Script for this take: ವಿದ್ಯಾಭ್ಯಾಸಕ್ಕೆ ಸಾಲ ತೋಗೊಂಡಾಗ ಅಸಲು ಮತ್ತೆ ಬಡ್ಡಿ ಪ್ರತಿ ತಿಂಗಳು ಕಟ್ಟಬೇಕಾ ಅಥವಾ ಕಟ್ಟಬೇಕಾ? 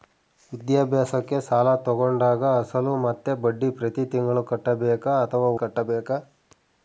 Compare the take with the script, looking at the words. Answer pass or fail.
pass